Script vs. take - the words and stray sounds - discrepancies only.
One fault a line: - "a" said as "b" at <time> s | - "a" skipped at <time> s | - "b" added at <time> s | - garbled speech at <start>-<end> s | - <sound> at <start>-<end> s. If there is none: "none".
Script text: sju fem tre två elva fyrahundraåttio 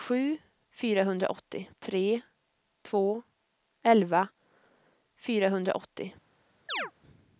- "fem" said as "fyrahundraåttio" at 0.7 s
- chirp at 6.7-6.9 s